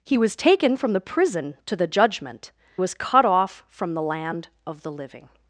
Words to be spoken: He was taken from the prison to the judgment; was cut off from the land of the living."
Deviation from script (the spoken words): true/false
false